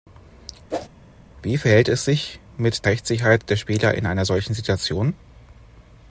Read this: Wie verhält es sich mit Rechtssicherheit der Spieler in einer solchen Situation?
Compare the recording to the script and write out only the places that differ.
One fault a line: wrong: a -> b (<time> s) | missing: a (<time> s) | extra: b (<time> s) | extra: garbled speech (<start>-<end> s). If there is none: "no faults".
no faults